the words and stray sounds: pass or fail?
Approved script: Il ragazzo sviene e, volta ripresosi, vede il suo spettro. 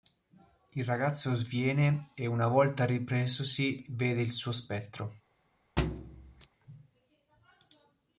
fail